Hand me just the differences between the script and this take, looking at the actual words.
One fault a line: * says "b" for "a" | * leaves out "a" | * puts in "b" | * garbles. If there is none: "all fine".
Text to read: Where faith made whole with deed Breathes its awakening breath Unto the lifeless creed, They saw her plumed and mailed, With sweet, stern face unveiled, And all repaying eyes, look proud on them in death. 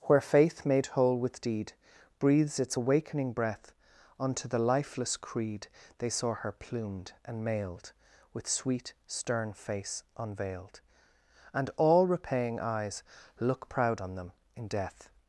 all fine